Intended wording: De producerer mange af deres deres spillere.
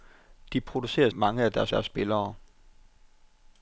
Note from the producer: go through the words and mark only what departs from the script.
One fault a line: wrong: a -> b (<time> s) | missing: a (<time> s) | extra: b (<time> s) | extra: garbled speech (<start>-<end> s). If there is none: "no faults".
no faults